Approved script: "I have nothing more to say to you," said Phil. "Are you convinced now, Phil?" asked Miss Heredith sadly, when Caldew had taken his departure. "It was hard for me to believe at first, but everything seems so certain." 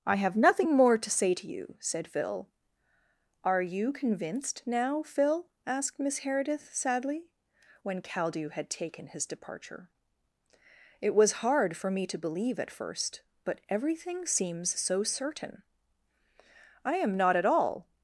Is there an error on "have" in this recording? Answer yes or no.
no